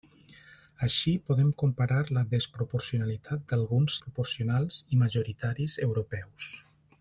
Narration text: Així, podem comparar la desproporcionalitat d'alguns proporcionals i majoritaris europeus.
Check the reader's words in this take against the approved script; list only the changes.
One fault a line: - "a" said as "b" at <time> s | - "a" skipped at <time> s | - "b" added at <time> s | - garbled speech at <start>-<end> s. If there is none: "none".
none